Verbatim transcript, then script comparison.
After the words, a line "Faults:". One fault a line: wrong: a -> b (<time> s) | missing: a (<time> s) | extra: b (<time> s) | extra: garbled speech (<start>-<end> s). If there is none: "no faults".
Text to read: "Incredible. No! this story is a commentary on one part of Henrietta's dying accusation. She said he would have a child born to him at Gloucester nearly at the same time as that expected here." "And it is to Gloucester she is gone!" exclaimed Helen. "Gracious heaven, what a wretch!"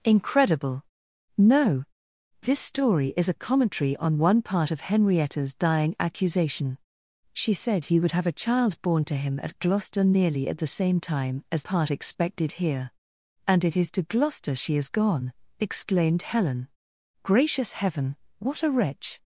"Incredible. No! this story is a commentary on one part of Henrietta's dying accusation. She said he would have a child born to him at Gloucester nearly at the same time as part expected here." "And it is to Gloucester she is gone!" exclaimed Helen. "Gracious heaven, what a wretch!"
Faults:
wrong: that -> part (11.6 s)